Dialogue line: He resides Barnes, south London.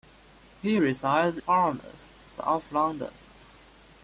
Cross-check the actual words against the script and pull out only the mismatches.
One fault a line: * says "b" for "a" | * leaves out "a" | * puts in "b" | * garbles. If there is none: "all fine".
all fine